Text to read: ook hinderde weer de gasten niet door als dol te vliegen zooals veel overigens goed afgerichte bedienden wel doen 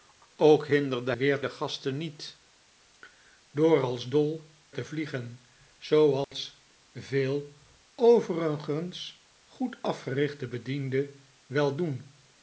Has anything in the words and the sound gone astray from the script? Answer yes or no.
yes